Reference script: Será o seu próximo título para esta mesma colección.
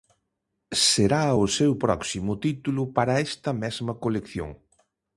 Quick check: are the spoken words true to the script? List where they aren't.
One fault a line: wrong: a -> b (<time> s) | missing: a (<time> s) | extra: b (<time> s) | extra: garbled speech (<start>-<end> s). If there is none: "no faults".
no faults